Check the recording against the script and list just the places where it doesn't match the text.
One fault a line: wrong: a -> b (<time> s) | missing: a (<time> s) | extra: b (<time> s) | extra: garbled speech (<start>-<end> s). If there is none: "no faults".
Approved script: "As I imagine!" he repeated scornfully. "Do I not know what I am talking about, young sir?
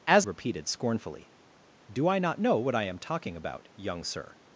missing: I imagine he (0.2 s)